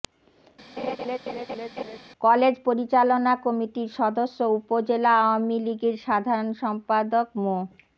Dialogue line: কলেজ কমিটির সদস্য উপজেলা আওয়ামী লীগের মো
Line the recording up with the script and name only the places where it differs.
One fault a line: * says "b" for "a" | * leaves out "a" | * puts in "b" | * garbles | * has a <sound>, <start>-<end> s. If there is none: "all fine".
* has a laugh, 0.8-2.0 s
* puts in "পরিচালনা"
* puts in "সাধারণ সম্পাদক"